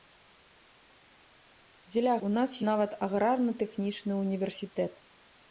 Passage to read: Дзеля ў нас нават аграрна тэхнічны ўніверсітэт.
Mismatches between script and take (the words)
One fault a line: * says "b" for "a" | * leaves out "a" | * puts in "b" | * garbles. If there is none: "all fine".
all fine